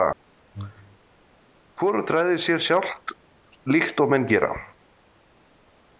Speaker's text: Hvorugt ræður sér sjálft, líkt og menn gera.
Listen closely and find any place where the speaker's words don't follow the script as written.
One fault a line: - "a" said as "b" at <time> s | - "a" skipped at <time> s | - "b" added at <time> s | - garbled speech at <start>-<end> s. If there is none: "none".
none